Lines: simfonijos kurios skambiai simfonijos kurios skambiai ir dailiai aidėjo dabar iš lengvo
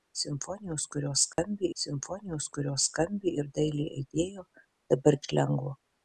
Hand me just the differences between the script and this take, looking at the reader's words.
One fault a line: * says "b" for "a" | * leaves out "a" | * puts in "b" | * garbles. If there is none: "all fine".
all fine